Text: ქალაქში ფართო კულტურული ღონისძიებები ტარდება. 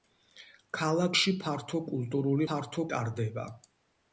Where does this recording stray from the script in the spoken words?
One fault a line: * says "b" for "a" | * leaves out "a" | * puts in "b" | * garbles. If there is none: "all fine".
* says "ფართო" for "ღონისძიებები"